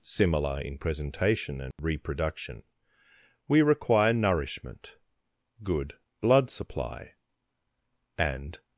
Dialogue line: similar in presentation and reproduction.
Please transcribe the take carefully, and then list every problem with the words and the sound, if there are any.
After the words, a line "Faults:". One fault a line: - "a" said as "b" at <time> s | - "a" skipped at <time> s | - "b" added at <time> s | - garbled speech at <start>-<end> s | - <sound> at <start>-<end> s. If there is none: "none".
similar in presentation and reproduction. We require nourishment, good blood supply, and
Faults:
- dropout at 1.7-1.8 s
- "We require nourishment good blood supply and" added at 3.5 s